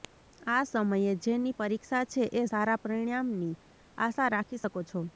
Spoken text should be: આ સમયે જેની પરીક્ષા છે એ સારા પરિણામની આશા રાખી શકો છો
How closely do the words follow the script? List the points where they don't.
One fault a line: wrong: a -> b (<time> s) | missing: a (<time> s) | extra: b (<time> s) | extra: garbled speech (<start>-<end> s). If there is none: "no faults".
no faults